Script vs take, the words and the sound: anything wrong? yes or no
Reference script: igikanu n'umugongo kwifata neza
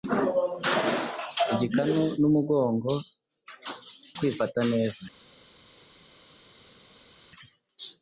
no